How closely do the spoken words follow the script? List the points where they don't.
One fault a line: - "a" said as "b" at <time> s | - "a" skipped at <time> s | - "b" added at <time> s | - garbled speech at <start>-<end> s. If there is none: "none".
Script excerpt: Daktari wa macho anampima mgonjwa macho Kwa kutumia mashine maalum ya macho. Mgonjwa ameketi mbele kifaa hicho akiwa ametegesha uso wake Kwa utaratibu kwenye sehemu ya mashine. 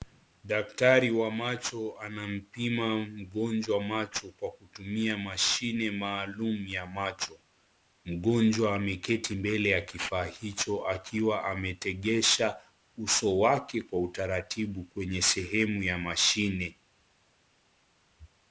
- "ya" added at 9.7 s